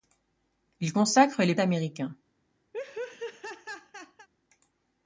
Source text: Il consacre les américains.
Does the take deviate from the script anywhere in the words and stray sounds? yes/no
yes